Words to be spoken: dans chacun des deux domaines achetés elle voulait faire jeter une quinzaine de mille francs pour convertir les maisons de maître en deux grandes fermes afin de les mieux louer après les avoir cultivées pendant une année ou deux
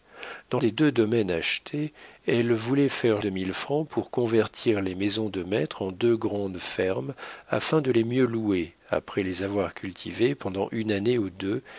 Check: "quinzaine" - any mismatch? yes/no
yes